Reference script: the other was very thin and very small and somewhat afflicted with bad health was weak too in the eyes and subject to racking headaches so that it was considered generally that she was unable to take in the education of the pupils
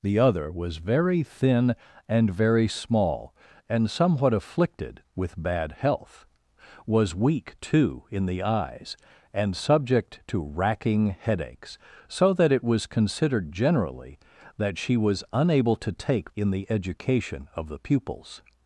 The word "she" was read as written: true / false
true